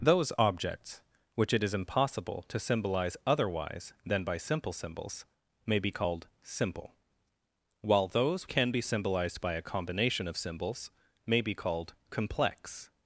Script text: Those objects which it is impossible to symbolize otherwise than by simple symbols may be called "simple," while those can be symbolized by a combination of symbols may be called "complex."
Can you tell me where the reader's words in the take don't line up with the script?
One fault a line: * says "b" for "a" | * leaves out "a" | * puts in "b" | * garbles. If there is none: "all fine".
all fine